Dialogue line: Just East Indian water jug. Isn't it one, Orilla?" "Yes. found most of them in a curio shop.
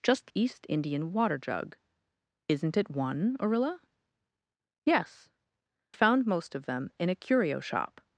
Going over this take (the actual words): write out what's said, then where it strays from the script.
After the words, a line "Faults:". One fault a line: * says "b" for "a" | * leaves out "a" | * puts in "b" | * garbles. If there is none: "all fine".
Just East Indian water jug. Isn't it one, Orilla?" "Yes. found most of them in a curio shop.
Faults:
all fine